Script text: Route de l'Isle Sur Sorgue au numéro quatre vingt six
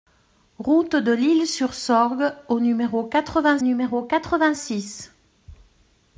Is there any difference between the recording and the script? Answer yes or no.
yes